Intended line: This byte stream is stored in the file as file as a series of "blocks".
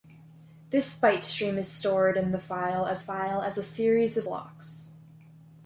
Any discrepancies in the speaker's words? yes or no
no